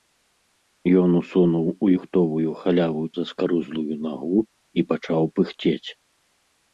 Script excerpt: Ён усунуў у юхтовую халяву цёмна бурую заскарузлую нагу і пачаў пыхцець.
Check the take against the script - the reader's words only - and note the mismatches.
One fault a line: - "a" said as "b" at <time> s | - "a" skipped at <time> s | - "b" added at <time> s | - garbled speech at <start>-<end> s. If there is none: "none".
- "цёмна бурую" skipped at 3.0 s